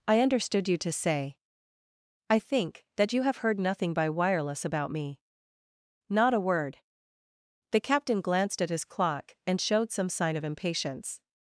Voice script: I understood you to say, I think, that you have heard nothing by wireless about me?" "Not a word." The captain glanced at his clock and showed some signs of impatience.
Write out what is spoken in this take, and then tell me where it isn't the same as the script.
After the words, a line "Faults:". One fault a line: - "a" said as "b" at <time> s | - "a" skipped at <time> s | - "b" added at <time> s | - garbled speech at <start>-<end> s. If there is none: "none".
I understood you to say, I think, that you have heard nothing by wireless about me?" "Not a word." The captain glanced at his clock and showed some sign of impatience.
Faults:
- "signs" said as "sign" at 10.1 s